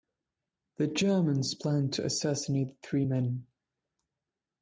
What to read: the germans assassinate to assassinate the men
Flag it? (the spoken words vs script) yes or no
yes